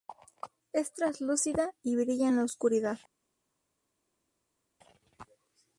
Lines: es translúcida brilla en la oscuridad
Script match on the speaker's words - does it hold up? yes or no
no